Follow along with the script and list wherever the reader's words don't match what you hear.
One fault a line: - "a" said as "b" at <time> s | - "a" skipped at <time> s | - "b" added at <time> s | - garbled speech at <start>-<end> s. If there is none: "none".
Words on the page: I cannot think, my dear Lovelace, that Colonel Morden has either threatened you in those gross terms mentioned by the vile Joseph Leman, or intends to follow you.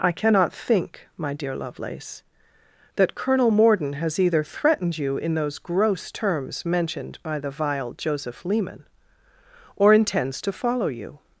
none